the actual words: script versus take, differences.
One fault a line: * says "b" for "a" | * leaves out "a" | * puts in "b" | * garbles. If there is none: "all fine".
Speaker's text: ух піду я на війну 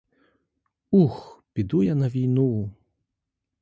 all fine